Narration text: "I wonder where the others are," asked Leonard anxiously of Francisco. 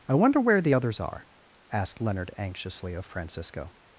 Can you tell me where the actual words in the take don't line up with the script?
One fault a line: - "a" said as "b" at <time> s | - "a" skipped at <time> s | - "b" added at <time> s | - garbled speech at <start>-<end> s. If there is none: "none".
none